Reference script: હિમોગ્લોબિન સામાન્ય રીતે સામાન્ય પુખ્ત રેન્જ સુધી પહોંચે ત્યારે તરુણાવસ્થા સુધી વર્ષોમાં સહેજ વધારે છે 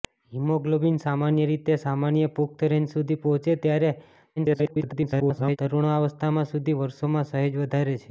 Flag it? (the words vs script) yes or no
yes